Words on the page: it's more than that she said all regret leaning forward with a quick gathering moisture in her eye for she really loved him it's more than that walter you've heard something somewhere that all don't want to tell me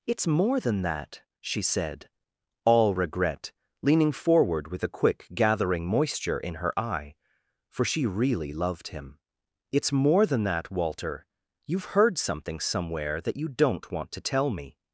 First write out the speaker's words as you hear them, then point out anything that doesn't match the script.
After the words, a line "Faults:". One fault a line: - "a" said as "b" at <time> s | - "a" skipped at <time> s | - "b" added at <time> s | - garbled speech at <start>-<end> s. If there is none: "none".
it's more than that she said all regret leaning forward with a quick gathering moisture in her eye for she really loved him it's more than that walter you've heard something somewhere that you don't want to tell me
Faults:
- "all" said as "you" at 13.4 s